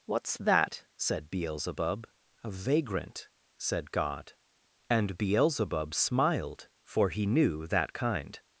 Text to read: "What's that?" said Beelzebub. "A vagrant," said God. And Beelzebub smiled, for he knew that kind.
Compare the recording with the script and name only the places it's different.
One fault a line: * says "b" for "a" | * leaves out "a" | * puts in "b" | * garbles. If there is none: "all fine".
all fine